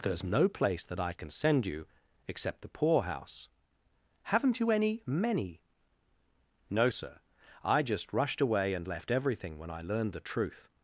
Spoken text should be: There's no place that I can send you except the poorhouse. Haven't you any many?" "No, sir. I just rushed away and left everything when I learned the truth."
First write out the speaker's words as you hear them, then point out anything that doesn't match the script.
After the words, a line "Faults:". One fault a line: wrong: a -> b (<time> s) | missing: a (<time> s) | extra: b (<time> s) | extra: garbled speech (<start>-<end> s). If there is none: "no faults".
There's no place that I can send you except the poorhouse. Haven't you any many?" "No, sir. I just rushed away and left everything when I learned the truth."
Faults:
no faults